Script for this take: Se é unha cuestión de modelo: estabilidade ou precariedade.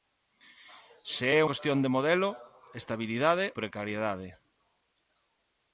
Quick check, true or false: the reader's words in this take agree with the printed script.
false